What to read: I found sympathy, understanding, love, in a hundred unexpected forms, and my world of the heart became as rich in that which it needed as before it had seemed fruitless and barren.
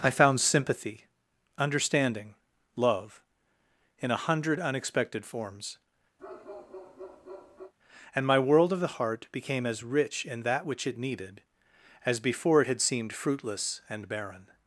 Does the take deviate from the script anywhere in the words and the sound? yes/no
yes